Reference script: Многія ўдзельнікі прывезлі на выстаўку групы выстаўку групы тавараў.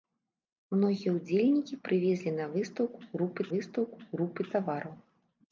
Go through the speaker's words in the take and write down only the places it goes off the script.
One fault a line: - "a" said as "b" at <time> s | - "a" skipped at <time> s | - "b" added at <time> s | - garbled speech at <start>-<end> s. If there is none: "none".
none